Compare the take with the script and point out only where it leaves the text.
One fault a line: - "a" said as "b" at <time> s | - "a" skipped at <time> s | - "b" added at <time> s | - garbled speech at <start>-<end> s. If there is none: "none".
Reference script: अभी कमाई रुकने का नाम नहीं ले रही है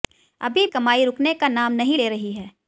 none